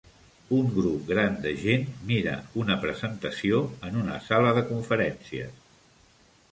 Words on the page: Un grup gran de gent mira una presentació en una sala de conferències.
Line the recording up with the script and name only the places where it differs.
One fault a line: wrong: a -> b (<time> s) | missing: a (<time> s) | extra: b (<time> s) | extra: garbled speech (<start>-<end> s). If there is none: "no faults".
no faults